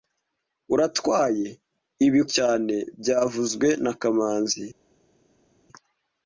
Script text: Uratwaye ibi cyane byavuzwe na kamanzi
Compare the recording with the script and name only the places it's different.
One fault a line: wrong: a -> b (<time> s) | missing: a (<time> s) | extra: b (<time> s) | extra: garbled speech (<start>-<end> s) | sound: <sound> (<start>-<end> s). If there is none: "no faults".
no faults